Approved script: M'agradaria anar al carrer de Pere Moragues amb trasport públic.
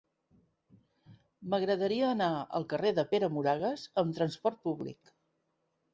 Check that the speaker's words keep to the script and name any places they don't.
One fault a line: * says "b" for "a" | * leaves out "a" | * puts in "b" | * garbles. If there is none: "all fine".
all fine